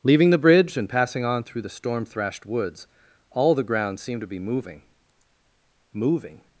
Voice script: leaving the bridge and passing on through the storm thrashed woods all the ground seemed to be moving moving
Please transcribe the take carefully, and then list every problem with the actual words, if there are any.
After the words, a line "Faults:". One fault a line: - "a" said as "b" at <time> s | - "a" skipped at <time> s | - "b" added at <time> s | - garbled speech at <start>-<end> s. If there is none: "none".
leaving the bridge and passing on through the storm thrashed woods all the ground seemed to be moving moving
Faults:
none